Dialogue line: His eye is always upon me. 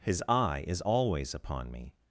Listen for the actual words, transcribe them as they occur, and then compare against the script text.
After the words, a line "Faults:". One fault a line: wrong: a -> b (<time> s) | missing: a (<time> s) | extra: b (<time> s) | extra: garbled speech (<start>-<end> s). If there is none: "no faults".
His eye is always upon me.
Faults:
no faults